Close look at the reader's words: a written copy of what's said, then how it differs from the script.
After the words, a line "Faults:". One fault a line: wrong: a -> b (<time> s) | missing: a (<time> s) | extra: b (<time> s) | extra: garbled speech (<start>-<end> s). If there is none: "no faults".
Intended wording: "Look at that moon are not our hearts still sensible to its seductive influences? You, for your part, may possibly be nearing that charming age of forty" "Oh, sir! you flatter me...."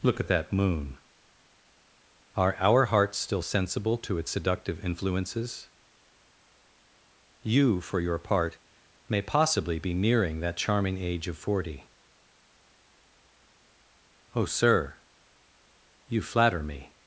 "Look at that moon are our hearts still sensible to its seductive influences? You, for your part, may possibly be nearing that charming age of forty" "Oh, sir! you flatter me...."
Faults:
missing: not (2.5 s)